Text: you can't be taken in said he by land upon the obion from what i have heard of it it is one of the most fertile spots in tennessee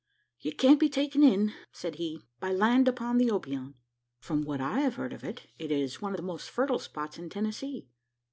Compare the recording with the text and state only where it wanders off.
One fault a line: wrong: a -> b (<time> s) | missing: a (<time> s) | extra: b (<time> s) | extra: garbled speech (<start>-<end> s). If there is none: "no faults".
no faults